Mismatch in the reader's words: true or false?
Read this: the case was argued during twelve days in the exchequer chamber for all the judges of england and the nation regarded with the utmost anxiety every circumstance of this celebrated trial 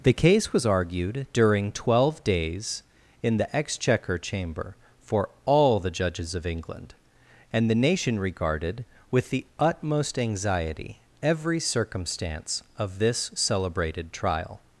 false